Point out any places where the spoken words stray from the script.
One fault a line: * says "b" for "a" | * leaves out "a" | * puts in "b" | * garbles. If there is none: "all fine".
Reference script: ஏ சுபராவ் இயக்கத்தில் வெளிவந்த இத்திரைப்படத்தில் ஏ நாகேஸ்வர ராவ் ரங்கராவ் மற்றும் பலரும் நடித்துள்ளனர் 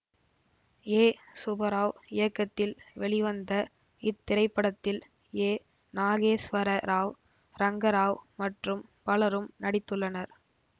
all fine